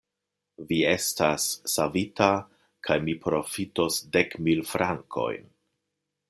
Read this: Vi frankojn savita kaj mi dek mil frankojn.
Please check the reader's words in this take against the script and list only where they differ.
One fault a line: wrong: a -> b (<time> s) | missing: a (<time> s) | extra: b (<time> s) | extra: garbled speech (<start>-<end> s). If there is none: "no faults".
wrong: frankojn -> estas (0.9 s)
extra: profitos (3.3 s)